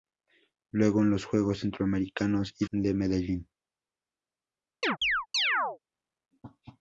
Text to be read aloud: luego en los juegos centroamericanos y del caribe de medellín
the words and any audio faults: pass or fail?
fail